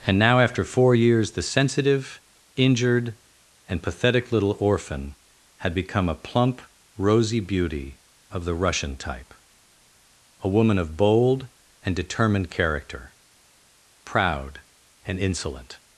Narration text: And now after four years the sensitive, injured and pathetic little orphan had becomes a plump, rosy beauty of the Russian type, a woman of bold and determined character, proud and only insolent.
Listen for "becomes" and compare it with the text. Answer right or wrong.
wrong